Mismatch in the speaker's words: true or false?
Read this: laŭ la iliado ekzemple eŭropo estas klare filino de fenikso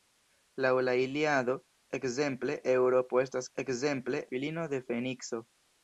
true